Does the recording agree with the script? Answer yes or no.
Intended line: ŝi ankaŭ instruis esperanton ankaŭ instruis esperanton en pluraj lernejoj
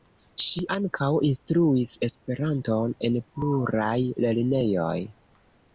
no